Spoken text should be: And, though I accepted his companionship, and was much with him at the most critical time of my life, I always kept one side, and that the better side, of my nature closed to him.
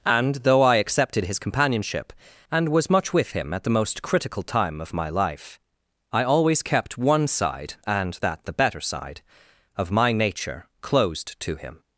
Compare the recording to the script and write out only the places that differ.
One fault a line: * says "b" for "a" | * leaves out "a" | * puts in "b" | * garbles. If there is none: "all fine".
all fine